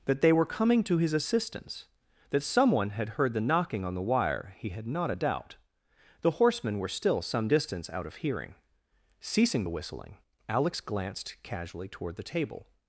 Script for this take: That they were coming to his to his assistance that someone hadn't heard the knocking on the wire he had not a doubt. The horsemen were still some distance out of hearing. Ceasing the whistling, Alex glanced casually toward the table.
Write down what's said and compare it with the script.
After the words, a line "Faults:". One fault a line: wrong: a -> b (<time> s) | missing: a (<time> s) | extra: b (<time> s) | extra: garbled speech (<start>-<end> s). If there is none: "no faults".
That they were coming to his assistance that someone had heard the knocking on the wire he had not a doubt. The horsemen were still some distance out of hearing. Ceasing the whistling, Alex glanced casually toward the table.
Faults:
missing: to his (1.1 s)
wrong: hadn't -> had (2.9 s)